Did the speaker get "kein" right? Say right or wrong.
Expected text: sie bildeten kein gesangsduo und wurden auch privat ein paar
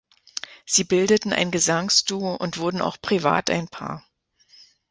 wrong